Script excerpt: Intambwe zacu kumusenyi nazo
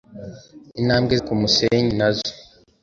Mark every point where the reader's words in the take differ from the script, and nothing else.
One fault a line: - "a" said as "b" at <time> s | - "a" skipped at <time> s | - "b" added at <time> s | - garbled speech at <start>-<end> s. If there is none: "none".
- "zacu" skipped at 1.1 s